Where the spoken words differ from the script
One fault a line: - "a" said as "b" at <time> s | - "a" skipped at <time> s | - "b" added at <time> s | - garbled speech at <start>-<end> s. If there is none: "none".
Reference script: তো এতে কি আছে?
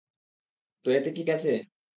none